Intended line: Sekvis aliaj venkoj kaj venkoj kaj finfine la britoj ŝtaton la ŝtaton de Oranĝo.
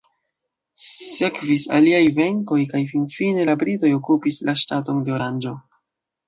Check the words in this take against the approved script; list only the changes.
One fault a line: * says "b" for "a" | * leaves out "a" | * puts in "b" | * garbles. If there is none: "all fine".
* leaves out "venkoj kaj"
* says "okupis" for "ŝtaton"